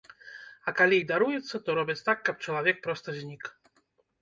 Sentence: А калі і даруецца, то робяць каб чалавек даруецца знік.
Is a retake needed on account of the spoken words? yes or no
yes